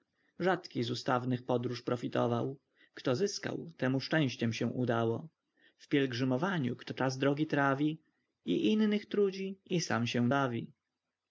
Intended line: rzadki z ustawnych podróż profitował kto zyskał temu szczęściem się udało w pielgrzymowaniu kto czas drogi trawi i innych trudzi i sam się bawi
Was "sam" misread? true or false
false